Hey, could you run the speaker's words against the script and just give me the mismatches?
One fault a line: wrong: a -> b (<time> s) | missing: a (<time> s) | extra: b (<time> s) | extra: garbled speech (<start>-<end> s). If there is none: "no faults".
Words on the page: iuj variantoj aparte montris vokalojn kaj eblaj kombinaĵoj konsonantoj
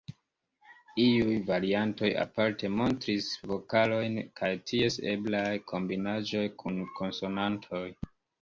extra: ties (4.7 s)
extra: kun (6.6 s)